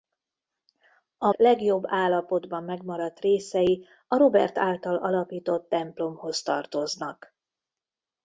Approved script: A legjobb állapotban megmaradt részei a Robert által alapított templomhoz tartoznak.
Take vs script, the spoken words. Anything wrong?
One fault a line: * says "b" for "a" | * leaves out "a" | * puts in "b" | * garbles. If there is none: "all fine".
all fine